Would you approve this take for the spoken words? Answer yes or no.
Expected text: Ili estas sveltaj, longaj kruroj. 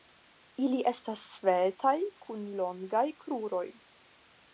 no